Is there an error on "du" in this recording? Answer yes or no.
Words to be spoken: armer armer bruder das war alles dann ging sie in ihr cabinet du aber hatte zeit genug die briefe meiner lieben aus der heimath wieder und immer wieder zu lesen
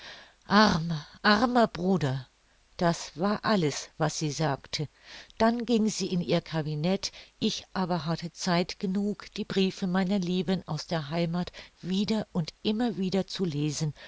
yes